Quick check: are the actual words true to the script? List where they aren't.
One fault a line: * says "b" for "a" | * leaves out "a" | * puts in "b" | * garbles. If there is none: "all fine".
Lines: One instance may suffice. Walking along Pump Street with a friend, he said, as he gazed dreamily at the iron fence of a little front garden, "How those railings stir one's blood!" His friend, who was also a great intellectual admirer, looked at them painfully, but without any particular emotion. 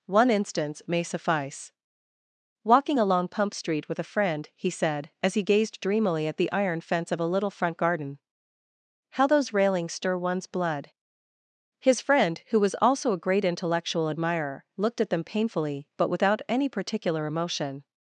all fine